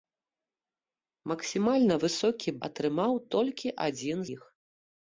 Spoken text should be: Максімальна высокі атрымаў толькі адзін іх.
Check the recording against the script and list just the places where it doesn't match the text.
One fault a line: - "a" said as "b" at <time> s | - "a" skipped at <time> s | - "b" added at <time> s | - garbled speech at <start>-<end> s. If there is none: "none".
none